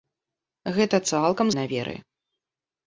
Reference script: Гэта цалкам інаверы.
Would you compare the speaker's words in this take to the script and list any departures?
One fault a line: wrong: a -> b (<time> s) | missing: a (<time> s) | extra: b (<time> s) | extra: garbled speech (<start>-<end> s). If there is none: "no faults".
no faults